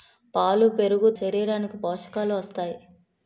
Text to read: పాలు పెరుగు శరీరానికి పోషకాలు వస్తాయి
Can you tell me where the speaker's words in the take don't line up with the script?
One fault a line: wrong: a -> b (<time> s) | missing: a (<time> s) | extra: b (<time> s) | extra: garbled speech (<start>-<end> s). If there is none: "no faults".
no faults